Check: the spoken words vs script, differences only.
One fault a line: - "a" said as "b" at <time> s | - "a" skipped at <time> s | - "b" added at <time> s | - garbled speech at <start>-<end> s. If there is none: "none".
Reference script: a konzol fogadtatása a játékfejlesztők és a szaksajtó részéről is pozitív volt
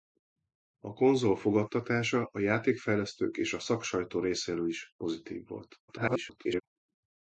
- garbled speech at 5.9-6.6 s